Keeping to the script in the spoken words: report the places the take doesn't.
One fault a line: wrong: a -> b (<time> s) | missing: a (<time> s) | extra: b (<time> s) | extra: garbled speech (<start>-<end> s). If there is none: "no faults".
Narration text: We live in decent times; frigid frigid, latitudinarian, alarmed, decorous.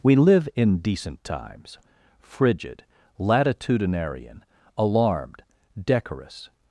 missing: frigid (2.9 s)